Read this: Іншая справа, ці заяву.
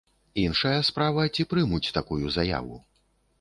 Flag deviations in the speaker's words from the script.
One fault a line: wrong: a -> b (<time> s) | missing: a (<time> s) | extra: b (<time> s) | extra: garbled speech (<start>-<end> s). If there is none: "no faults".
extra: прымуць такую (1.5 s)